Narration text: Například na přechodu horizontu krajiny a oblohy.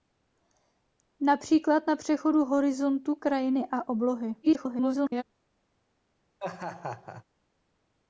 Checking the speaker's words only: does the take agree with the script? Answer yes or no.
no